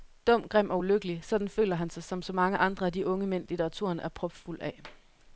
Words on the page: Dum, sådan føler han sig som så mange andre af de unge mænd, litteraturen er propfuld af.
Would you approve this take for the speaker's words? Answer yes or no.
no